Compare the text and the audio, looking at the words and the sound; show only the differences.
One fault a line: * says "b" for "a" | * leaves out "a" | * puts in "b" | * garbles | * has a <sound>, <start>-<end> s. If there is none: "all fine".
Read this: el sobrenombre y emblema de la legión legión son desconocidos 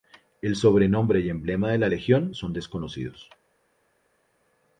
* leaves out "legión"